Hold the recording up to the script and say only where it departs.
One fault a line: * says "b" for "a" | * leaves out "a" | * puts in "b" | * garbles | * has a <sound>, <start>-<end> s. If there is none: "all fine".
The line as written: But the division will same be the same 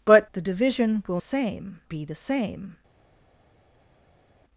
all fine